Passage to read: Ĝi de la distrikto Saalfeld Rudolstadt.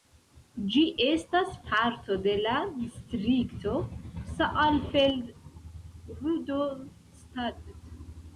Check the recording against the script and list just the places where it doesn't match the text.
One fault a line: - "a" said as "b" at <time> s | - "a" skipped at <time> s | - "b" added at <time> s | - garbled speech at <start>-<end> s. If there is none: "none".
- "estas parto" added at 1.1 s